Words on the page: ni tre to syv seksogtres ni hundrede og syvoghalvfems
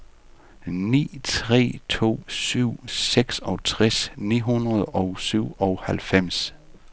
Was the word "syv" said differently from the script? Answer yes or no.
no